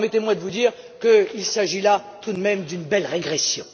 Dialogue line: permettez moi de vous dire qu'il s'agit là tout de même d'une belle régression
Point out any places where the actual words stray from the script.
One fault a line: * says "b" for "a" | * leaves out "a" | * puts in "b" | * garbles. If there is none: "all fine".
all fine